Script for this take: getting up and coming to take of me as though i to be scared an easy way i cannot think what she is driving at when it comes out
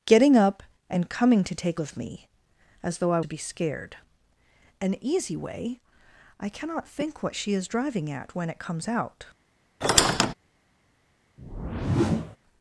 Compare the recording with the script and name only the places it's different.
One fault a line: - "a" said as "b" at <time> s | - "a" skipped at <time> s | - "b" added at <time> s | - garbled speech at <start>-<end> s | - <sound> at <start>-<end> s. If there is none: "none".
- squeak at 9.8-10.3 s
- whoosh at 11.4-12.4 s